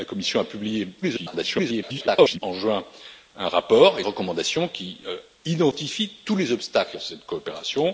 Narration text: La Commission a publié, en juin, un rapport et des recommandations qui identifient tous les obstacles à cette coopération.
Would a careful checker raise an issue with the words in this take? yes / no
yes